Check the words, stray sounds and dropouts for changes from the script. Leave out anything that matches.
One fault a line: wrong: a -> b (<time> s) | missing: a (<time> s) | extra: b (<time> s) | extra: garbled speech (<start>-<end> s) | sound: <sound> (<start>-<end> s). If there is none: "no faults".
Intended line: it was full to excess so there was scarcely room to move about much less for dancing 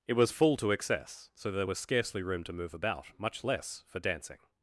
no faults